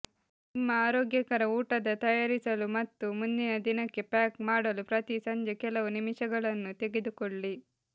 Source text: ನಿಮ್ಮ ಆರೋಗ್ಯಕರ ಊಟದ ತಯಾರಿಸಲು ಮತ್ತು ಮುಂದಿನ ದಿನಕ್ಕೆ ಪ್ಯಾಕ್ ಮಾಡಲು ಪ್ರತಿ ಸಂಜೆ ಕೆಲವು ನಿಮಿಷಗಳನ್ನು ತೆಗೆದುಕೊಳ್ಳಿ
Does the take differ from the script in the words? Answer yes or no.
no